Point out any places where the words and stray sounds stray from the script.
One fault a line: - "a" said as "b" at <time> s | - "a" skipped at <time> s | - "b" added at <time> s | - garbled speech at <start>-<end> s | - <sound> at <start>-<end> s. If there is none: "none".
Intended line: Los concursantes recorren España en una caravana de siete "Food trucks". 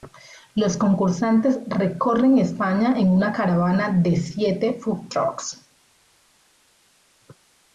none